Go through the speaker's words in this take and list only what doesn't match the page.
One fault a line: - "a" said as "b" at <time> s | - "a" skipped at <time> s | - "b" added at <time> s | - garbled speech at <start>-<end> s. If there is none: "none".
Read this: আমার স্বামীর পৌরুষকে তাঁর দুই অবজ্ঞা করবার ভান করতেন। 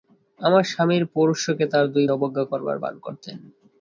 none